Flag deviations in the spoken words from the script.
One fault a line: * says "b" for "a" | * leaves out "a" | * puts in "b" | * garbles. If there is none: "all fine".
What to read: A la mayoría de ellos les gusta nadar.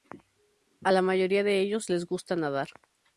all fine